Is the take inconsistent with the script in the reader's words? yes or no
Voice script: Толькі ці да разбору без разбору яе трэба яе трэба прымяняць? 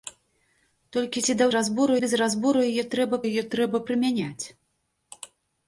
no